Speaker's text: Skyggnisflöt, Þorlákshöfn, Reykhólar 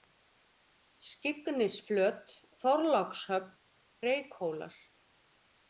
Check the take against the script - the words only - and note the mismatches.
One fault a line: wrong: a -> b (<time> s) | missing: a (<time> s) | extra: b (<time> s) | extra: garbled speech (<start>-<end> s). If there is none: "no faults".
no faults